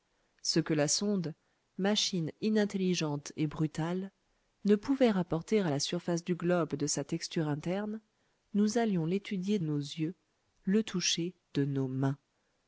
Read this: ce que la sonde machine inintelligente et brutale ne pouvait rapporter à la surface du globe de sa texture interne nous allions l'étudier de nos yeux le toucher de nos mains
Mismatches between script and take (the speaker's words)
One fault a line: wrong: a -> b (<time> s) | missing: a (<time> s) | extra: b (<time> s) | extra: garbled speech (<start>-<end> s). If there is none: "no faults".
missing: de (9.6 s)